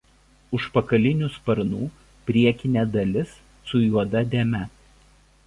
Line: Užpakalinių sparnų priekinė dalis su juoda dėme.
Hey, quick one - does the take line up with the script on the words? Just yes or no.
yes